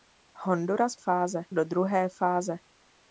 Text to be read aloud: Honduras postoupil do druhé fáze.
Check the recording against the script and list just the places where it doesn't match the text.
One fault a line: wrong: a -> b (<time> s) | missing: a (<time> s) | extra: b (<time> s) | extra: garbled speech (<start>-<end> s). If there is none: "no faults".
wrong: postoupil -> fáze (0.9 s)